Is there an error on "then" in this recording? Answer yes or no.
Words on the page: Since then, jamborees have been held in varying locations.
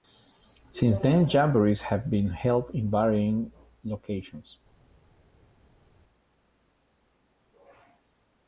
no